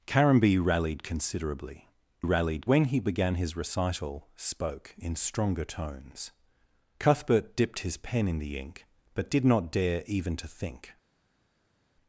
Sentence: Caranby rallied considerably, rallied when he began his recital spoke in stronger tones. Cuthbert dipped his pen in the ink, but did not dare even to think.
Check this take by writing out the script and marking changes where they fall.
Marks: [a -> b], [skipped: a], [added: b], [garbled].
Caranby rallied considerably, rallied when he began his recital spoke in stronger tones. Cuthbert dipped his pen in the ink, but did not dare even to think.